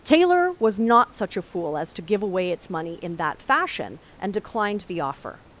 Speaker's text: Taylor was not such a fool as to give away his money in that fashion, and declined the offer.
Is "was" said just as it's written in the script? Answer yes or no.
yes